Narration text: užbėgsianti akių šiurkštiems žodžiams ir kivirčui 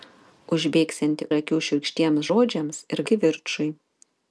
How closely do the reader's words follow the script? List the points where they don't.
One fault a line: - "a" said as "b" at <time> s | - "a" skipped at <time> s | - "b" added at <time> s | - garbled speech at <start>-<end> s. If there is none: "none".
none